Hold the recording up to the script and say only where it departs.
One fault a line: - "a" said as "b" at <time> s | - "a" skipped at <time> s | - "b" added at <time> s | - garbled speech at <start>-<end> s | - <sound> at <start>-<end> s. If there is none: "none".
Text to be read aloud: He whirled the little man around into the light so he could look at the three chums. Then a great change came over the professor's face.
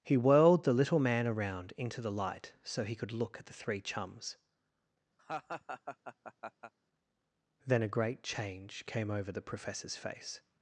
- laugh at 5.2-6.7 s